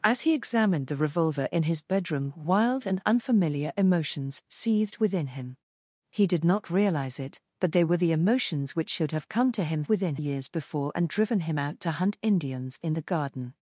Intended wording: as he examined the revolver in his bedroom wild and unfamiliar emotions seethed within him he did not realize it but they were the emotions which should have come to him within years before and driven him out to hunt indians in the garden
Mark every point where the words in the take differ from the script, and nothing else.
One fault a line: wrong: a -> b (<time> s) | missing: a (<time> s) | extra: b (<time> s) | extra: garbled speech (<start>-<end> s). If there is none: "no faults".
no faults